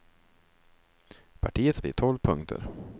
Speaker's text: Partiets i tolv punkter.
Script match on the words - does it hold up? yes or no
yes